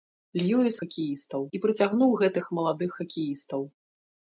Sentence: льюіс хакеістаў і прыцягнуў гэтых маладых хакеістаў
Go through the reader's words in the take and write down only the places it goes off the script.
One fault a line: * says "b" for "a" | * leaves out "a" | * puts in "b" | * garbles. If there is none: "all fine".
all fine